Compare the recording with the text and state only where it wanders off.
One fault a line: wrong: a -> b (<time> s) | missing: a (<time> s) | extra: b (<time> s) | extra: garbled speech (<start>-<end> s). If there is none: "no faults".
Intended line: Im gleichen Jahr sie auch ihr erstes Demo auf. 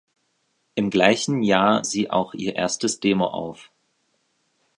no faults